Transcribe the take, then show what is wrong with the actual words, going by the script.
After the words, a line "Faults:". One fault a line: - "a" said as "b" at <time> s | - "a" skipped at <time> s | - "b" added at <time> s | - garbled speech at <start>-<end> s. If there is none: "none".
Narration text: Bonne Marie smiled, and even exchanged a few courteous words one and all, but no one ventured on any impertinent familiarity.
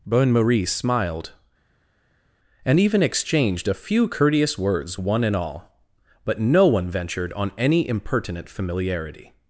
Bonne Marie smiled, and even exchanged a few courteous words one and all, but no one ventured on any impertinent familiarity.
Faults:
none